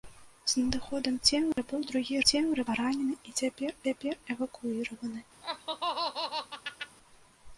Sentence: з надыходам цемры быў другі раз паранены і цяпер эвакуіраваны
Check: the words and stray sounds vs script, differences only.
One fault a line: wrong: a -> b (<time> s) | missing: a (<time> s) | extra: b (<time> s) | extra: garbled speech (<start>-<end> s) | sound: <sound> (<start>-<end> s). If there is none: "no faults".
sound: dropout (1.5-1.6 s)
wrong: раз -> цемры (2.3 s)
extra: цяпер (3.9 s)
sound: laugh (5.4-7.0 s)